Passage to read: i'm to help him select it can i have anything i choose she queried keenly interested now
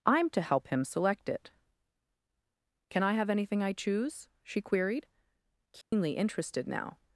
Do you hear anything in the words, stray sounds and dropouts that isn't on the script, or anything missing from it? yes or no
yes